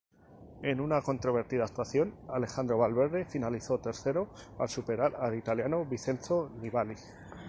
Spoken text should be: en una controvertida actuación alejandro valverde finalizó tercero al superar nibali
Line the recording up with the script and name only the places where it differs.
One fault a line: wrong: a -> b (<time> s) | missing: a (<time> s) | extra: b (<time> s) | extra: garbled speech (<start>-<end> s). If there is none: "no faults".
extra: al italiano vincenzo (5.2 s)